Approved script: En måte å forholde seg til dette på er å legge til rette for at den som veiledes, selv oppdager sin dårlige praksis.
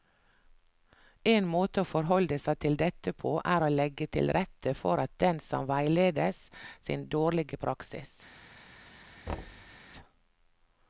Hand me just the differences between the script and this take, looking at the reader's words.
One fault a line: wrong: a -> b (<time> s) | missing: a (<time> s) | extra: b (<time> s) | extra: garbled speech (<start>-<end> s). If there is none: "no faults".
missing: selv oppdager (6.4 s)